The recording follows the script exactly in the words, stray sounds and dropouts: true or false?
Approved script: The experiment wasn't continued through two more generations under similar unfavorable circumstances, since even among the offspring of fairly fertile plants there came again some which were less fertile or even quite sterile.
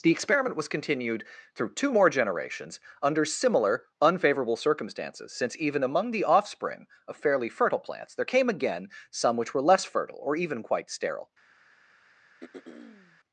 false